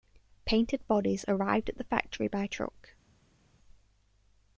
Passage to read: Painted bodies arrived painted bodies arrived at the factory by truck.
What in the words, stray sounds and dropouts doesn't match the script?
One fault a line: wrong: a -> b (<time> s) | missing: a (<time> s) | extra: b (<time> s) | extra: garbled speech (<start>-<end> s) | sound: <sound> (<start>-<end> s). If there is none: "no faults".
missing: painted bodies arrived (1.7 s)